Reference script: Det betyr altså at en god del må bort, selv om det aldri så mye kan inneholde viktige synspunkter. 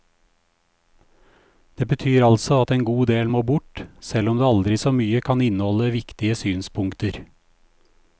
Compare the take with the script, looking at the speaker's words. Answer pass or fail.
pass